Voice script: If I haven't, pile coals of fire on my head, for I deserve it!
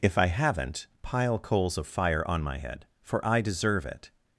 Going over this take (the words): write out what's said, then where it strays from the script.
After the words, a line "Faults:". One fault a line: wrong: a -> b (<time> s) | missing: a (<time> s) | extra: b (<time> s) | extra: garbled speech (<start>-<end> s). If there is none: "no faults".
If I haven't, pile coals of fire on my head, for I deserve it!
Faults:
no faults